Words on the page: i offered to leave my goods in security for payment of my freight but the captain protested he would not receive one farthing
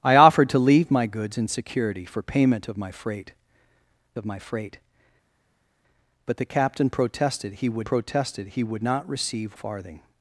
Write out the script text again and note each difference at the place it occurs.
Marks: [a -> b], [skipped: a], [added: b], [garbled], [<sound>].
i offered to leave my goods in security for payment of my freight [added: of my freight] but the captain protested he would [added: protested he would] not receive [skipped: one] farthing